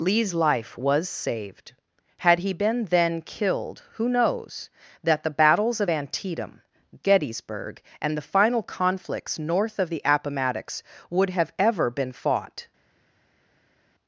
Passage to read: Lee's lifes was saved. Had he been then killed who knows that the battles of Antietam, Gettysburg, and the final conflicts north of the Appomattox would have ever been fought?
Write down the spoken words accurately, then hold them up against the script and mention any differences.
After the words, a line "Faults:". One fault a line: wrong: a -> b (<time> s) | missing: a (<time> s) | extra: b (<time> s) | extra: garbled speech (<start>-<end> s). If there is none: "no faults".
Lee's life was saved. Had he been then killed who knows that the battles of Antietam, Gettysburg, and the final conflicts north of the Appomattox would have ever been fought?
Faults:
wrong: lifes -> life (0.3 s)